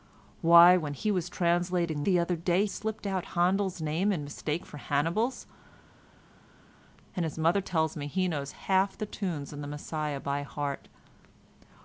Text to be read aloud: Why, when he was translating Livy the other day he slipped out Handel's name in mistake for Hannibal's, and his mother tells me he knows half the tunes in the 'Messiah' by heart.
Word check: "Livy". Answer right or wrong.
wrong